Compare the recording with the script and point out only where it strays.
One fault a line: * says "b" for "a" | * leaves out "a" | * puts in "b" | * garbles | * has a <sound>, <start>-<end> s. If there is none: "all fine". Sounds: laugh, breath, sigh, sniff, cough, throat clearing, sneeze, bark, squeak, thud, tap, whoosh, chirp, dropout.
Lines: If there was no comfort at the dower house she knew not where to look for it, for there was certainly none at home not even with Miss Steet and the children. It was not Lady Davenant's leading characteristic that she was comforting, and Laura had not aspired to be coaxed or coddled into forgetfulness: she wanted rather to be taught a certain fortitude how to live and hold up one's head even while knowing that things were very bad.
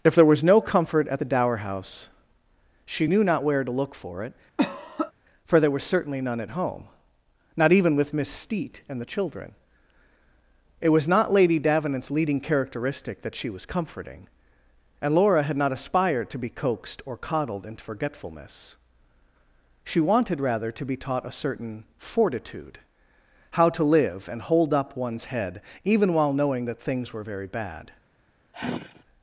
* has a cough, 4.6-5.1 s
* has a sigh, 28.5-29.0 s